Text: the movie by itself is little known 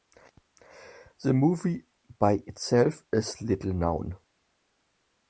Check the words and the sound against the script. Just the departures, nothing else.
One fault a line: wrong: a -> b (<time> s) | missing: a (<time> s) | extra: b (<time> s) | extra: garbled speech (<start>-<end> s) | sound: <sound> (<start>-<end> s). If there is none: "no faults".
no faults